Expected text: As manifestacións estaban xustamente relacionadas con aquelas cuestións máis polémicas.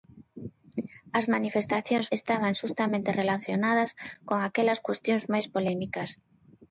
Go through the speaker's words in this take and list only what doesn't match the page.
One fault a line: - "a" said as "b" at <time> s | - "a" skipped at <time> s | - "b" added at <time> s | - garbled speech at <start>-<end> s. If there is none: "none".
none